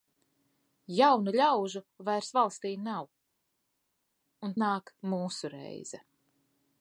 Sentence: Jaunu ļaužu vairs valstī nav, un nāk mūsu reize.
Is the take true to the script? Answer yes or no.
yes